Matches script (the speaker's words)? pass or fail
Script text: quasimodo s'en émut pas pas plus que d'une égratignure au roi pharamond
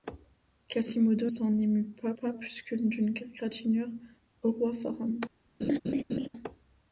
pass